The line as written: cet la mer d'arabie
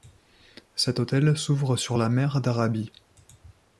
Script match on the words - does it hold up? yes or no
no